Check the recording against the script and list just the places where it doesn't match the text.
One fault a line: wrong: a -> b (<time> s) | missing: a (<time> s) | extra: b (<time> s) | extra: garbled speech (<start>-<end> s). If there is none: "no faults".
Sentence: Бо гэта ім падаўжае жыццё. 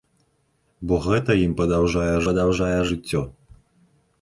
extra: падаўжае (2.3 s)